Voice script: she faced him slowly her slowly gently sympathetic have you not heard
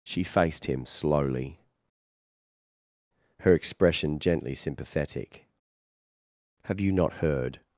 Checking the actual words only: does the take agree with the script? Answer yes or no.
no